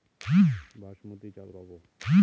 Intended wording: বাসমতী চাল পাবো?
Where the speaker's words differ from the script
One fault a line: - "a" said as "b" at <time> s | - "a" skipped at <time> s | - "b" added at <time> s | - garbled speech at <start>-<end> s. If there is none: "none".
none